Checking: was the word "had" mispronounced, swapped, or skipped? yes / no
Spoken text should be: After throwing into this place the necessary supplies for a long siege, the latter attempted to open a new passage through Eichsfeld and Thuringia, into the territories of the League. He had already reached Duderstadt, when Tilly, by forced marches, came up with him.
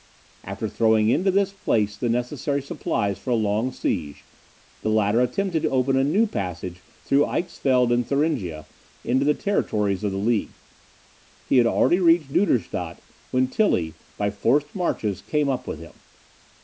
no